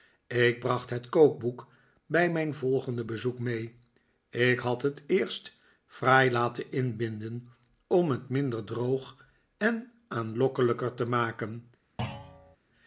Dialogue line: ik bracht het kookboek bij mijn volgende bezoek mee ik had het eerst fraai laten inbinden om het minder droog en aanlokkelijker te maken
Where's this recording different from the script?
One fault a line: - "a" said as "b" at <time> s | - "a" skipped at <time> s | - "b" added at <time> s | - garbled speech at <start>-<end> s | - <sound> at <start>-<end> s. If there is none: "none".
- thud at 12.0-12.6 s